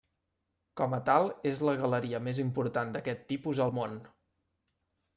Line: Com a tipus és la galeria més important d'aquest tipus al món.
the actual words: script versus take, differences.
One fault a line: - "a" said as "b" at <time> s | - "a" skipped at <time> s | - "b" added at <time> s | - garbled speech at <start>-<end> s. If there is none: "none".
- "tipus" said as "tal" at 1.1 s